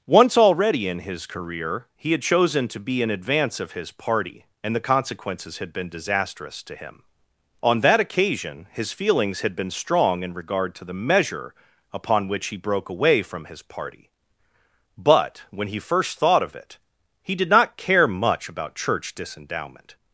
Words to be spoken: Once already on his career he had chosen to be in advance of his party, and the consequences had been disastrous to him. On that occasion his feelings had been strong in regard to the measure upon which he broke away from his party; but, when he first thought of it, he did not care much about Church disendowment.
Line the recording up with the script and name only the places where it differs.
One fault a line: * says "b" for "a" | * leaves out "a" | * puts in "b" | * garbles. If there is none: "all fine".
* says "in" for "on"